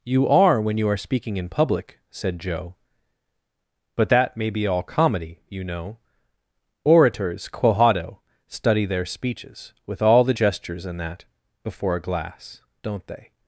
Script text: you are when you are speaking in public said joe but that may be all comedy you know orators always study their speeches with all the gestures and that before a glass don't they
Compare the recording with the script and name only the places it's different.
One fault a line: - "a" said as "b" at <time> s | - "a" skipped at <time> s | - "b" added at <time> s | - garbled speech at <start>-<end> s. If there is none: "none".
- "always" said as "quohado" at 7.5 s